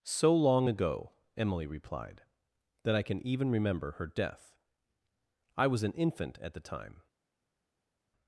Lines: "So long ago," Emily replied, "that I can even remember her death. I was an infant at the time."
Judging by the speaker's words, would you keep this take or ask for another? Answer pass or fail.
pass